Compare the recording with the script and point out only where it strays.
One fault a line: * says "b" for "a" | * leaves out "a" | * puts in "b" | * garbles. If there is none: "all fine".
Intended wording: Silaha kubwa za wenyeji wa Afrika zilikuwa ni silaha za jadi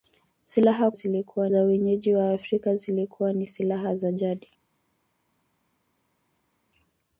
* says "zilikuwa" for "kubwa"